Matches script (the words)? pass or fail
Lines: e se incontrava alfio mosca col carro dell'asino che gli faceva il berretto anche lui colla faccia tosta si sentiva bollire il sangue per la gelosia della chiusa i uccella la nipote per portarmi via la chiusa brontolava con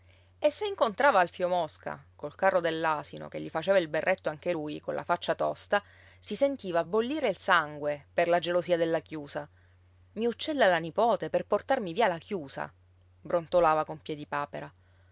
pass